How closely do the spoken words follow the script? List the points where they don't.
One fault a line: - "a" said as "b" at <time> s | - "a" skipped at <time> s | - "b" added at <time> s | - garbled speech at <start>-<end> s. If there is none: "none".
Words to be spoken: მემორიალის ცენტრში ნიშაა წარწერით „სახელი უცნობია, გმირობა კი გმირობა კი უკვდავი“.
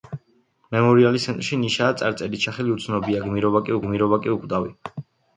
none